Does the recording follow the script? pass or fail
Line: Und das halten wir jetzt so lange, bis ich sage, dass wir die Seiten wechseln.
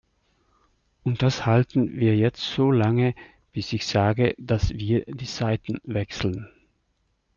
pass